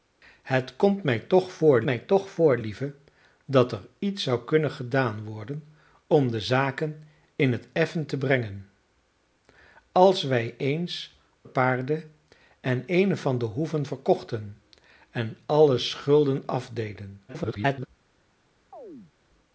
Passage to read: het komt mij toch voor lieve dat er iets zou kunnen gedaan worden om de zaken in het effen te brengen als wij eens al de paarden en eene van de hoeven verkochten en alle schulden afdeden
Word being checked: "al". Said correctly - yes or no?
no